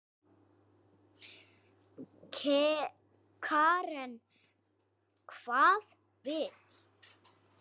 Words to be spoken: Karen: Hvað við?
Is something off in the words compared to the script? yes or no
no